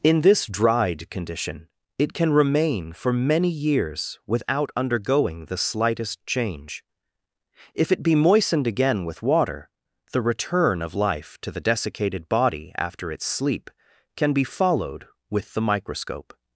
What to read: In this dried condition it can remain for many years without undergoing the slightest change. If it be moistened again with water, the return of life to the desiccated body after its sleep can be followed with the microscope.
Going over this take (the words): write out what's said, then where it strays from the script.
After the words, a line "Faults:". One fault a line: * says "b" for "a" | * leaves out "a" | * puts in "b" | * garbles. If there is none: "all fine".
In this dried condition it can remain for many years without undergoing the slightest change. If it be moistened again with water, the return of life to the desiccated body after its sleep can be followed with the microscope.
Faults:
all fine